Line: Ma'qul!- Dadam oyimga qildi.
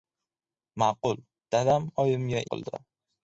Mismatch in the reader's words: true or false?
false